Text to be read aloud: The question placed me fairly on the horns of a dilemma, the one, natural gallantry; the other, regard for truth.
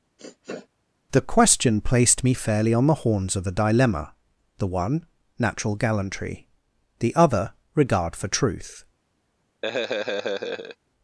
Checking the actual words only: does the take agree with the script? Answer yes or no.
yes